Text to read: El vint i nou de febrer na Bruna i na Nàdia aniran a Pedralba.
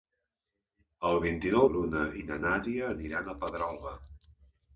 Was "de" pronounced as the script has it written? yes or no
no